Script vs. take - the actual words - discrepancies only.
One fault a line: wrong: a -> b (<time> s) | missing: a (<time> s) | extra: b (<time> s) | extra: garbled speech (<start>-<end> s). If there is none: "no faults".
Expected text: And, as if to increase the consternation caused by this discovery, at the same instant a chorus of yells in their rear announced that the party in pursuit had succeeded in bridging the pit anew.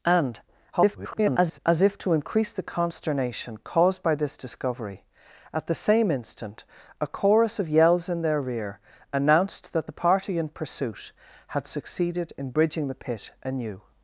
extra: garbled speech (0.7-1.6 s)